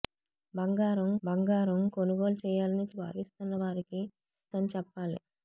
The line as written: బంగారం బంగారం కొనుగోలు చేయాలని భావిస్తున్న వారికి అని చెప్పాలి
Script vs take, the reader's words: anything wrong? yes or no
no